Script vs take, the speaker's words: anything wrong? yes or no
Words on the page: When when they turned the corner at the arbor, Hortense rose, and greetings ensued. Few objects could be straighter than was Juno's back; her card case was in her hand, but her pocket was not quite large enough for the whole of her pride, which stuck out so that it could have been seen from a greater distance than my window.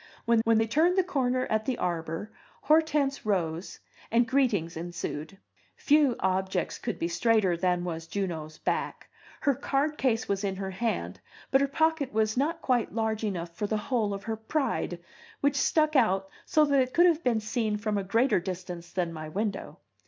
no